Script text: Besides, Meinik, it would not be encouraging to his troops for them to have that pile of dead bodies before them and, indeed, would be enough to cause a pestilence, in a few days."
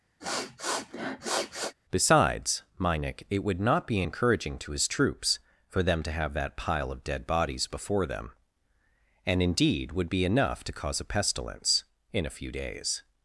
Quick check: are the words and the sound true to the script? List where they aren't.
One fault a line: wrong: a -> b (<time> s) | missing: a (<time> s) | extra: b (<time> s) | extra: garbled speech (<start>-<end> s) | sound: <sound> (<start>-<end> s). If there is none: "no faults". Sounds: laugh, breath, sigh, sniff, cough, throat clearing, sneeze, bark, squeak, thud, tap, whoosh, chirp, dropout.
sound: sniff (0.2-1.7 s)